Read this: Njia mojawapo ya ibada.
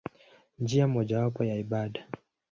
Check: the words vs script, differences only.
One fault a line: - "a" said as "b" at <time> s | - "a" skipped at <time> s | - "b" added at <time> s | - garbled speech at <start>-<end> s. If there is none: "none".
none